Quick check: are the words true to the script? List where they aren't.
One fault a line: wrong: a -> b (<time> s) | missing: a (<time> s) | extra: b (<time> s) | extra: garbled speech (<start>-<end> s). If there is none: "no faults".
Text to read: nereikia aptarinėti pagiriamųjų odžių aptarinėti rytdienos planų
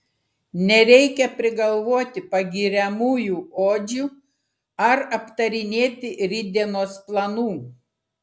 wrong: aptarinėti -> prigalvoti (1.4 s)
extra: ar (4.9 s)